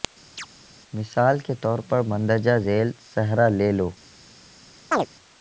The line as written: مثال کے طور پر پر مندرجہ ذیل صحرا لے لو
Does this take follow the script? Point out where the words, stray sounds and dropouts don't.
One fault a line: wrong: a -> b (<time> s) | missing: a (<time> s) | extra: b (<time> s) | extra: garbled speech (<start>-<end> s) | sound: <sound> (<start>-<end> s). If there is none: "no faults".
sound: chirp (0.4-0.5 s)
missing: پر (2.0 s)
sound: chirp (4.9-5.1 s)